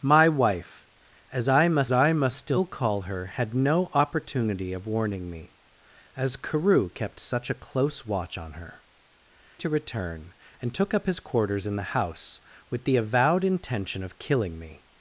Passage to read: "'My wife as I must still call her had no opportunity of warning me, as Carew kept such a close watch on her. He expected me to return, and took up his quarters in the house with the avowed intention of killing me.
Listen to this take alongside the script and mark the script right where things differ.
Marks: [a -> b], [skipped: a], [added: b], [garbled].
"'My wife as I must [added: I must] still call her had no opportunity of warning me, as Carew kept such a close watch on her. [skipped: He expected me] to return, and took up his quarters in the house with the avowed intention of killing me.